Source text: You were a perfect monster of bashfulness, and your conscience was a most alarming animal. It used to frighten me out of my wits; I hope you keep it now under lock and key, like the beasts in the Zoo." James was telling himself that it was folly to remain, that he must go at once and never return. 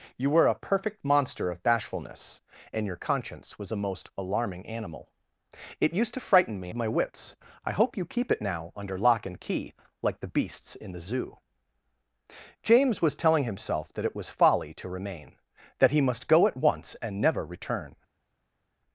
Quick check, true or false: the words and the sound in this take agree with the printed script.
false